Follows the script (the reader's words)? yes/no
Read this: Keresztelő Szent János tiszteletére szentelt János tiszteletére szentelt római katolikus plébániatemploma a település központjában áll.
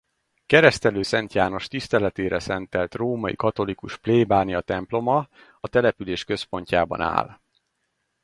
no